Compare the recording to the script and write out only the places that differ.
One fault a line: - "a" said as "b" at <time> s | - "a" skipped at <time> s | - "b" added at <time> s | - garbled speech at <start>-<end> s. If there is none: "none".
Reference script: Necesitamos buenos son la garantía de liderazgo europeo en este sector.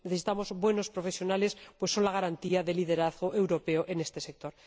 - "profesionales pues" added at 0.9 s